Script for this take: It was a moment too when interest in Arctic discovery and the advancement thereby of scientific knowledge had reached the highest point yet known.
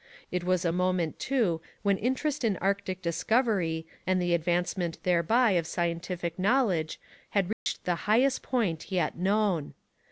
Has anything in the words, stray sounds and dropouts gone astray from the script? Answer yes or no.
yes